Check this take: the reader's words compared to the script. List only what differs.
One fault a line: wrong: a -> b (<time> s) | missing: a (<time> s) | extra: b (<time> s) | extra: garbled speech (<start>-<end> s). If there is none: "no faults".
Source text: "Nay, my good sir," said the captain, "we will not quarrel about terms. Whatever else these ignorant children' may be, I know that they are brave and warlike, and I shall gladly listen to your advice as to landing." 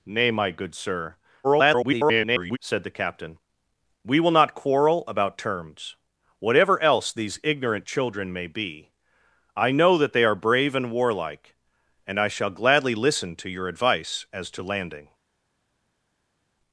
extra: garbled speech (1.4-2.6 s)